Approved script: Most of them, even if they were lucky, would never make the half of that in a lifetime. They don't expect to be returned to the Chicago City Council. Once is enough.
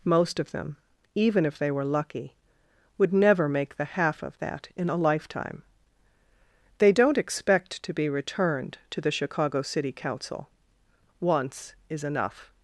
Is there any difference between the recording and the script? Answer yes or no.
no